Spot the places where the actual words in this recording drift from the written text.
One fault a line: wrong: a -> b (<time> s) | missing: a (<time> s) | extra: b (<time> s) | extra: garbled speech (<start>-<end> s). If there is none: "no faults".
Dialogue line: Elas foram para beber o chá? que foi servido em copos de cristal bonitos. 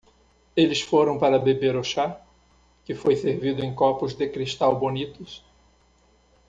wrong: Elas -> Eles (0.6 s)